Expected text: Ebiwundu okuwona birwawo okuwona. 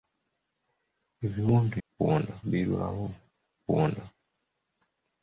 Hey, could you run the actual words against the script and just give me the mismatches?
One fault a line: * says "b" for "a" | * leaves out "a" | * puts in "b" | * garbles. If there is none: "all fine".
all fine